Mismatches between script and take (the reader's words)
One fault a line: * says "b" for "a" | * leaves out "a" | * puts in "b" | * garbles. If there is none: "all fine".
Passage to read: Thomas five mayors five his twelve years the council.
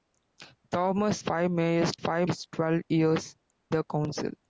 all fine